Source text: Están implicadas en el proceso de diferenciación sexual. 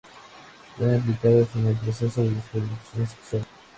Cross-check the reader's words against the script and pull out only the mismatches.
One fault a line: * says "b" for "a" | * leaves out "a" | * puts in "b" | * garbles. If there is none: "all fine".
all fine